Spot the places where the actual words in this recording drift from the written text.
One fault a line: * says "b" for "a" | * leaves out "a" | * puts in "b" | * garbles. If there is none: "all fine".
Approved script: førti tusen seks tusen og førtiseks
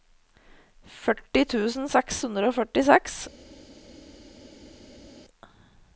* says "hundre" for "tusen"